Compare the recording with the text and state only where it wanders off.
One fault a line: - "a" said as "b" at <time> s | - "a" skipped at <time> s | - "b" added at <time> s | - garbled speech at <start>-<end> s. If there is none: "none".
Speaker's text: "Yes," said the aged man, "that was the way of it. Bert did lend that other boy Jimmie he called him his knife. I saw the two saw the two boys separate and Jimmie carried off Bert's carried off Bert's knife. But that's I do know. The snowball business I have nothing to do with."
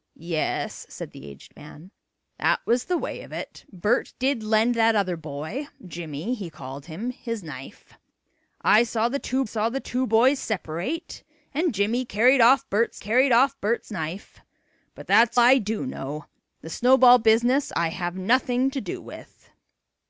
none